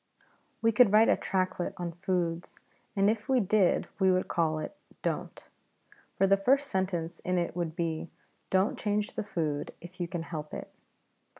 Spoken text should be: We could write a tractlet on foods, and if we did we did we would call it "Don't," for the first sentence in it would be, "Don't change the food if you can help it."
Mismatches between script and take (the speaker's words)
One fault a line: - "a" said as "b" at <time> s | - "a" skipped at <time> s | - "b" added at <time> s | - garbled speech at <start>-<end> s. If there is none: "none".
- "did we" skipped at 4.1 s